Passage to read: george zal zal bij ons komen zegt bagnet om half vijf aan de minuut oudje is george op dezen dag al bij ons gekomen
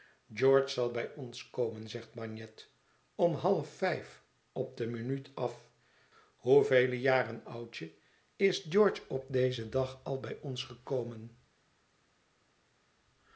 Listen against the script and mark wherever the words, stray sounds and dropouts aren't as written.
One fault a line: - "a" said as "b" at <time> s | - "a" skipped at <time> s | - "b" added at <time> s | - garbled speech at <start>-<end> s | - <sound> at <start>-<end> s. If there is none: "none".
- "zal" skipped at 0.9 s
- "aan" said as "op" at 4.5 s
- "af hoevele jaren" added at 5.3 s